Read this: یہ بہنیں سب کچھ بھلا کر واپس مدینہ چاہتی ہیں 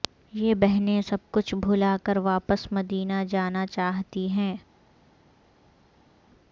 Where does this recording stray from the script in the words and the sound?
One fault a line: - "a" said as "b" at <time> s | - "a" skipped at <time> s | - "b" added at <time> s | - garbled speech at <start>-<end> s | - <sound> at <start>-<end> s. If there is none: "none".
- "جانا" added at 3.3 s